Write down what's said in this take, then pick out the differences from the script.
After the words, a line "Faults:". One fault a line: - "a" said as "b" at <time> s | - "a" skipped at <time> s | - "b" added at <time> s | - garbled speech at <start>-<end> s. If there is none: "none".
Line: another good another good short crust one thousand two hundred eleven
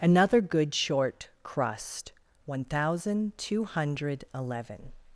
another good short crust one thousand two hundred eleven
Faults:
- "another good" skipped at 0.7 s